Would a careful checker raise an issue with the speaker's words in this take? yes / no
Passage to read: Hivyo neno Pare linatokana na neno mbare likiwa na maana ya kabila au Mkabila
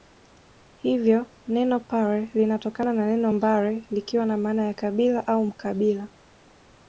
no